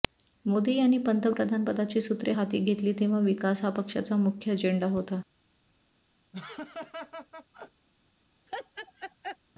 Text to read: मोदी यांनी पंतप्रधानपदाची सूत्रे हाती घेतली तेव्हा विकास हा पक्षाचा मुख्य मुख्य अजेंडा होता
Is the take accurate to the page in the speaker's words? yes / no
no